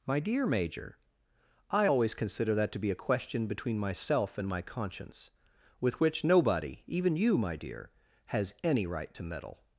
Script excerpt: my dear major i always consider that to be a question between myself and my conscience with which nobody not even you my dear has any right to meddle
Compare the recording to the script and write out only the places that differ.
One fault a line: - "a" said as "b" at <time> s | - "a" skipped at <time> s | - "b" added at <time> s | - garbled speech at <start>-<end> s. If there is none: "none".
- "not" skipped at 6.8 s